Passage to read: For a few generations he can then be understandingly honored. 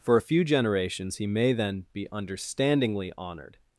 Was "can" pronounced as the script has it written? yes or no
no